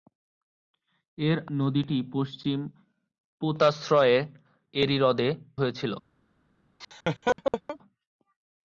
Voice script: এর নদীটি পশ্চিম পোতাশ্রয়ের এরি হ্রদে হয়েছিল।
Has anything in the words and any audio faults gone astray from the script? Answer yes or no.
yes